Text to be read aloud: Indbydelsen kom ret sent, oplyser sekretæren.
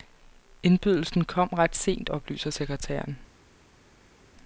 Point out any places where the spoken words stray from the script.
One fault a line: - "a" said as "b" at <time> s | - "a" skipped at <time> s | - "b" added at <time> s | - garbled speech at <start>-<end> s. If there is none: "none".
none